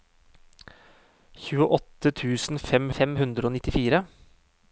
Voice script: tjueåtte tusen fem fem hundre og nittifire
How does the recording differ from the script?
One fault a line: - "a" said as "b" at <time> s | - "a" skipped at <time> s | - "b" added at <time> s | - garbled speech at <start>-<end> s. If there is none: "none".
none